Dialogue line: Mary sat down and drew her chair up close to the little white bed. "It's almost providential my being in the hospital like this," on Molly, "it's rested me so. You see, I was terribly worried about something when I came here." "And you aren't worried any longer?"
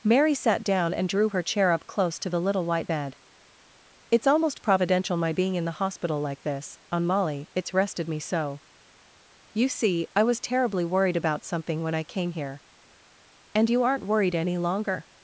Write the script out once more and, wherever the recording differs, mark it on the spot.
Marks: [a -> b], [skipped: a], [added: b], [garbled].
Mary sat down and drew her chair up close to the little white bed. "It's almost providential my being in the hospital like this," on Molly, "it's rested me so. You see, I was terribly worried about something when I came here." "And you aren't worried any longer?"